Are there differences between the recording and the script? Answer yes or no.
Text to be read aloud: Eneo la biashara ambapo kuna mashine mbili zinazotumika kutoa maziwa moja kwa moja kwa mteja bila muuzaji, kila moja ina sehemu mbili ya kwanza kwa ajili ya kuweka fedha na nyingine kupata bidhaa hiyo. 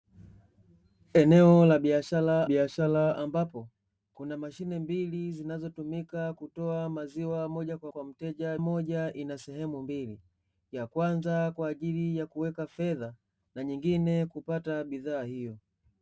yes